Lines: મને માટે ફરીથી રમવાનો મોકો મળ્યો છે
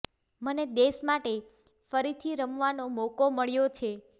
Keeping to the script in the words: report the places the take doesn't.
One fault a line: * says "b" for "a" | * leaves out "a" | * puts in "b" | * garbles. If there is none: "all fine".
* puts in "દેશ"